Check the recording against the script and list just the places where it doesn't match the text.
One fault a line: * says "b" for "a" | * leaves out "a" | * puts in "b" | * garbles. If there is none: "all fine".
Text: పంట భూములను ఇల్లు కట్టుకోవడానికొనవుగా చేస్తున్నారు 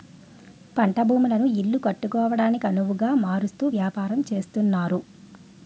* puts in "మారుస్తూ వ్యాపారం"